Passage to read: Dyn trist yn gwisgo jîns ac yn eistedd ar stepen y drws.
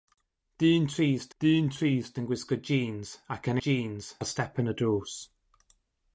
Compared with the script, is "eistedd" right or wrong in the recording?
wrong